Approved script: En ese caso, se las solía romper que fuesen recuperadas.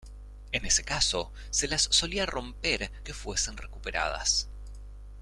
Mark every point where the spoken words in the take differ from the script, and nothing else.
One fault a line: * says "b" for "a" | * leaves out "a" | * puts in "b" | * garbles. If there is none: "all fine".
all fine